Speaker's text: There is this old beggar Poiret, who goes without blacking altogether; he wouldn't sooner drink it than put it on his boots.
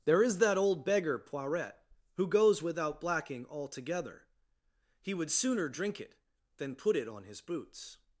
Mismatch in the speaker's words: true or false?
true